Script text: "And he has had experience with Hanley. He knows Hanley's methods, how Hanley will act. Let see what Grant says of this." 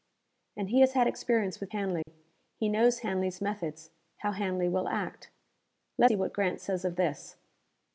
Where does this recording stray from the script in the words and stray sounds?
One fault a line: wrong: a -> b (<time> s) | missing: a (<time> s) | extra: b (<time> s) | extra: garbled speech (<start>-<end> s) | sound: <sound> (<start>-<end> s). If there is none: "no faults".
sound: dropout (2.0-2.1 s)